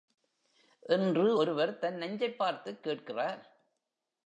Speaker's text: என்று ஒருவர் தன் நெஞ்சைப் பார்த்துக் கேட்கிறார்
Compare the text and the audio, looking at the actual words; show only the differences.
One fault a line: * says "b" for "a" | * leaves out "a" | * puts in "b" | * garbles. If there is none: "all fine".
all fine